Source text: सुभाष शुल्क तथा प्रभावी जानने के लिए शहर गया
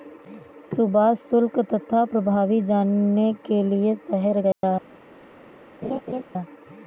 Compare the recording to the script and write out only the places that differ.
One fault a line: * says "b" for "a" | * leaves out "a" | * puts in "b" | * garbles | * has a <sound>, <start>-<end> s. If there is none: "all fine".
* has a dropout, 4.5-4.6 s
* has a laugh, 5.8-6.2 s